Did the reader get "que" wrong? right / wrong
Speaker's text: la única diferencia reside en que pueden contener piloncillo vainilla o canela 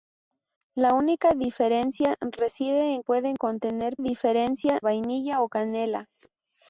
wrong